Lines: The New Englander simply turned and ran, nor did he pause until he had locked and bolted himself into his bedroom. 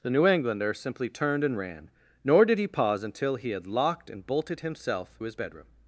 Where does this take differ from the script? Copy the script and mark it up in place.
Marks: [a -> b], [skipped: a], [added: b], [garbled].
The New Englander simply turned and ran, nor did he pause until he had locked and bolted himself [skipped: into] his bedroom.